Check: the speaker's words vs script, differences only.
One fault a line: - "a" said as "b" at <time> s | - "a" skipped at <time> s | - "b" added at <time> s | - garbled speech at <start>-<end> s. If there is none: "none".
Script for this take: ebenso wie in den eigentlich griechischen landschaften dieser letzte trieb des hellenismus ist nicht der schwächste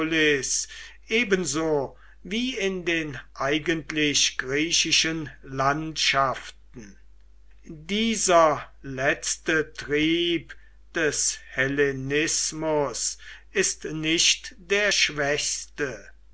none